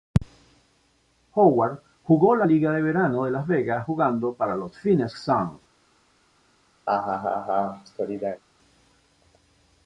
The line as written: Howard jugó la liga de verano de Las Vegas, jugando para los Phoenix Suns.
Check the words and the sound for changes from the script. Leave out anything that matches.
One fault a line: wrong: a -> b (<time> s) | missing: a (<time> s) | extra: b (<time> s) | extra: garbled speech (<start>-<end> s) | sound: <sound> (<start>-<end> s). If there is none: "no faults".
sound: laugh (6.9-8.4 s)